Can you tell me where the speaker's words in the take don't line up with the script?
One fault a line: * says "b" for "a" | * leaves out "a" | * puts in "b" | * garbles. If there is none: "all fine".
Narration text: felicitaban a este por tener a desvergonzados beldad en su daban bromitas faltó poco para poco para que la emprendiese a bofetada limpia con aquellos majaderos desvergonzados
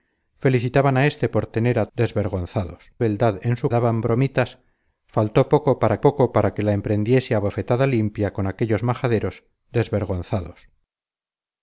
all fine